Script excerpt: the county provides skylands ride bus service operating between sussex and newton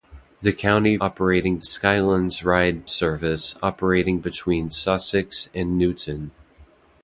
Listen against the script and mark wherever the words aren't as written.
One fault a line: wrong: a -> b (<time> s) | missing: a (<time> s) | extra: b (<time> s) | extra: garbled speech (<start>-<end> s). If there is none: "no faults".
wrong: provides -> operating (1.0 s)
missing: bus (2.9 s)